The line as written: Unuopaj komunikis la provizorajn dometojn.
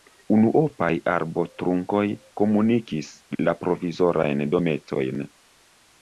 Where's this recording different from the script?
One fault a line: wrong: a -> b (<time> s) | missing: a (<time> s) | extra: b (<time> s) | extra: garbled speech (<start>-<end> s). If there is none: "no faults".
extra: arbotrunkoj (1.1 s)